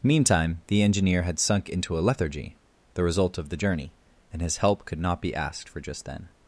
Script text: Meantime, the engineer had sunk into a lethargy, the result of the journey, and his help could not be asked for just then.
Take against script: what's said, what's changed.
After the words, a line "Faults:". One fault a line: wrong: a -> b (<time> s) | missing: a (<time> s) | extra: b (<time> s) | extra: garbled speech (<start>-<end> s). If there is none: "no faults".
Meantime, the engineer had sunk into a lethargy, the result of the journey, and his help could not be asked for just then.
Faults:
no faults